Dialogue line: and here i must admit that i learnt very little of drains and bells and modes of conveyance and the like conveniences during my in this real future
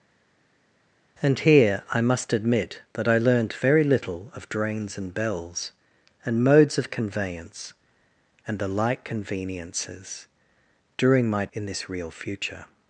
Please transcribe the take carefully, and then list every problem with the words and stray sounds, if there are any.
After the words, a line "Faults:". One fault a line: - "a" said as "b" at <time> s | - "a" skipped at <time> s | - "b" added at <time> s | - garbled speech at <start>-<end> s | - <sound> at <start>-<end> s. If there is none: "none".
and here i must admit that i learnt very little of drains and bells and modes of conveyance and the like conveniences during my in this real future
Faults:
none